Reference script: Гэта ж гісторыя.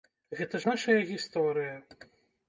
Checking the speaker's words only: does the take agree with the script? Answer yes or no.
no